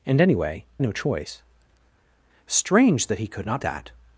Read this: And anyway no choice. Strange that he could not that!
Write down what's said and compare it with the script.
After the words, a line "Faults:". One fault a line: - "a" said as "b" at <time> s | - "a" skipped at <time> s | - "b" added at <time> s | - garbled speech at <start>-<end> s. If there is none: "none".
And anyway no choice. Strange that he could not that!
Faults:
none